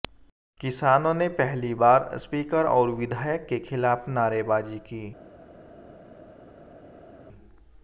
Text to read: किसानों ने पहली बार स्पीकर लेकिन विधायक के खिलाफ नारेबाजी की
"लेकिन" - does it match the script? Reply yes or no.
no